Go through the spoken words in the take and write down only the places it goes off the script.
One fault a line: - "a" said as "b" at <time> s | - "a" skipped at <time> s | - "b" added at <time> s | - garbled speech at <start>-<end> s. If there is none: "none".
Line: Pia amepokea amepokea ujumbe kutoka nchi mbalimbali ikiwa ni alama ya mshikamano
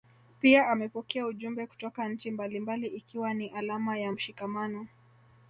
- "amepokea" skipped at 1.2 s